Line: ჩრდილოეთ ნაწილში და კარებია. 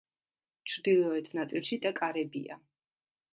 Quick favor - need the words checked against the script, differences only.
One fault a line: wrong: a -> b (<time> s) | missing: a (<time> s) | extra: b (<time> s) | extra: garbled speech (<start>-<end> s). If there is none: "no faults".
no faults